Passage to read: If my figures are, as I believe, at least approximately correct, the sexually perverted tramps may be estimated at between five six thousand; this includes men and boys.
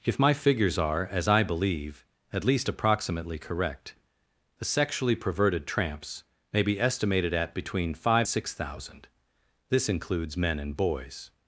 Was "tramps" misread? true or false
false